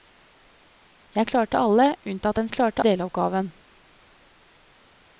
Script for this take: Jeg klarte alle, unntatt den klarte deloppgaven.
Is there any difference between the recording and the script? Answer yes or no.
no